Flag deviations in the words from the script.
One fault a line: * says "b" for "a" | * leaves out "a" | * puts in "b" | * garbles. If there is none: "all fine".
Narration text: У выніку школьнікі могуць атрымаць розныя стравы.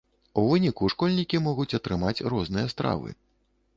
all fine